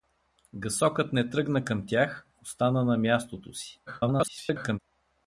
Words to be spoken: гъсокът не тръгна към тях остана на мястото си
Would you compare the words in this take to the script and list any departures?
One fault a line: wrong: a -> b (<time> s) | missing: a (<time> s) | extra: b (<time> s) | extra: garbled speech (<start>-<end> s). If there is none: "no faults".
extra: garbled speech (3.9-4.8 s)